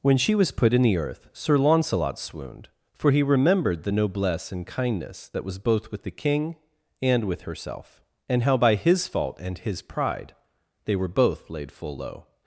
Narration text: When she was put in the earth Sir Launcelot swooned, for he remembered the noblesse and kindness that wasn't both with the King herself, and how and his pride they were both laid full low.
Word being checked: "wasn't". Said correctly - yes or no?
no